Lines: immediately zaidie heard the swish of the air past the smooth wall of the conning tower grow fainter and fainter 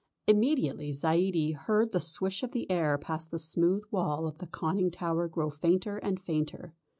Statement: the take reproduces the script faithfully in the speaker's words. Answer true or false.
true